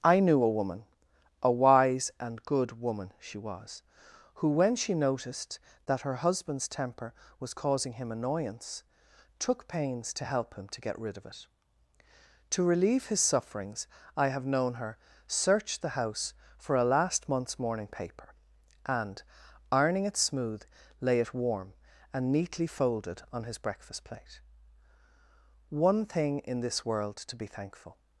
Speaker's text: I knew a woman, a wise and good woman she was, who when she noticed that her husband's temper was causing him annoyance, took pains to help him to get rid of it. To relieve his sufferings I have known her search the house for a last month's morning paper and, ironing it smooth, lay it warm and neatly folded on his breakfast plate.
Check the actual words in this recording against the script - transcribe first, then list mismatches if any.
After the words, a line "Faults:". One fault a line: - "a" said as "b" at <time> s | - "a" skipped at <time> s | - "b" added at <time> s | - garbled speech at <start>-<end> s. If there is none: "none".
I knew a woman, a wise and good woman she was, who when she noticed that her husband's temper was causing him annoyance, took pains to help him to get rid of it. To relieve his sufferings I have known her search the house for a last month's morning paper and, ironing it smooth, lay it warm and neatly folded on his breakfast plate. "One thing in this world to be thankful
Faults:
- "One thing in this world to be thankful" added at 25.7 s